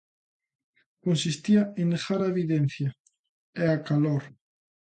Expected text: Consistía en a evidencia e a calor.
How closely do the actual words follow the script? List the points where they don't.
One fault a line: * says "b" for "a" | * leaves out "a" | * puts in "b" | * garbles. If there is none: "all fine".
* puts in "negar"